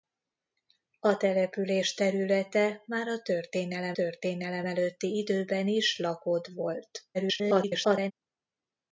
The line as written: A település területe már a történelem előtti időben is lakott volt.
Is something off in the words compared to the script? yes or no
yes